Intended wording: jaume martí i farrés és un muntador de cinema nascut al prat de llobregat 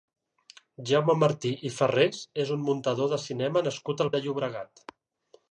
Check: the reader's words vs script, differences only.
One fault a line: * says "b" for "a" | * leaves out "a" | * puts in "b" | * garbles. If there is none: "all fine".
* leaves out "prat"